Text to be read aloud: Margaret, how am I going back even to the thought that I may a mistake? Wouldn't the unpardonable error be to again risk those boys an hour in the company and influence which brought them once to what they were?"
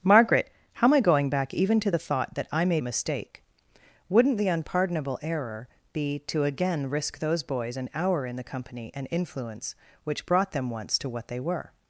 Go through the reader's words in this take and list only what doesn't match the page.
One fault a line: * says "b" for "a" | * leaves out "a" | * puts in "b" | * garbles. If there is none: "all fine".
all fine